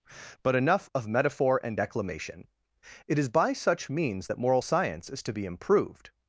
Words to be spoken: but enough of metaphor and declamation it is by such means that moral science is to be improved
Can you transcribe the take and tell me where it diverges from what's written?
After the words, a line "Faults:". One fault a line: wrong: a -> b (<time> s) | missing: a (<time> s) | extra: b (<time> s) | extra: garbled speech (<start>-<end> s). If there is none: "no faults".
but enough of metaphor and declamation it is by such means that moral science is to be improved
Faults:
no faults